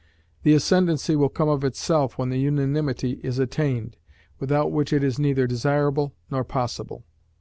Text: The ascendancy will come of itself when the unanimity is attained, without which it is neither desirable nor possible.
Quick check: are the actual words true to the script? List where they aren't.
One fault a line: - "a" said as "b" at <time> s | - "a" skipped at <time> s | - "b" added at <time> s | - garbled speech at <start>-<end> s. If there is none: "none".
none